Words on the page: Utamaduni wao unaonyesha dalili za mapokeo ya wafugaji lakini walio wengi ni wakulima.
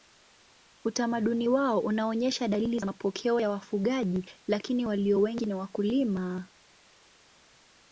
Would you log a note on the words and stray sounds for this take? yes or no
no